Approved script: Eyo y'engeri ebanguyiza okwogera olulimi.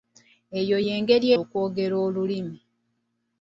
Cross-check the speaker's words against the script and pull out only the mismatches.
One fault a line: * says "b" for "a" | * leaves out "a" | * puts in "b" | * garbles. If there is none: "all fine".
* leaves out "ebanguyiza"